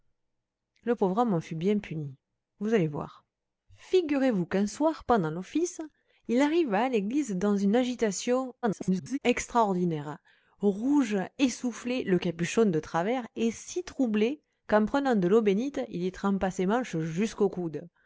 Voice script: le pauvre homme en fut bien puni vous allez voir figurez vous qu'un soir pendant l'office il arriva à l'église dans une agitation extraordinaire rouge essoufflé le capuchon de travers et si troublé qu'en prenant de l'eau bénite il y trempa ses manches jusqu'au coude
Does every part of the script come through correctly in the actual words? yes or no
no